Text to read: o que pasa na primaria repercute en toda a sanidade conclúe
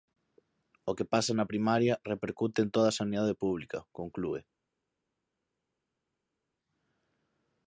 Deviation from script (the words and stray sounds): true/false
true